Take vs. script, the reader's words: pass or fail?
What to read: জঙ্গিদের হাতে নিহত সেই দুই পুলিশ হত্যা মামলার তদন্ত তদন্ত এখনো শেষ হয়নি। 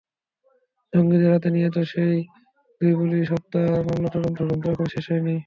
pass